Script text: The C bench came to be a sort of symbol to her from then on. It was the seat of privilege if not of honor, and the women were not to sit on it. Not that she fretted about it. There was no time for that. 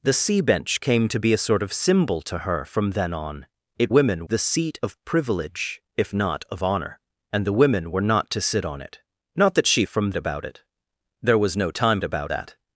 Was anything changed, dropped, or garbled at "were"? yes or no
no